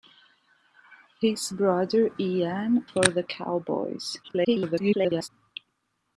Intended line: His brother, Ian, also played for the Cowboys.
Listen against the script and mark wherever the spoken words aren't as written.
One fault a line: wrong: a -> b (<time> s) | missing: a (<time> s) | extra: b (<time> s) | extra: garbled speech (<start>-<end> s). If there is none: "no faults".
missing: also played (2.9 s)
extra: garbled speech (4.2-5.3 s)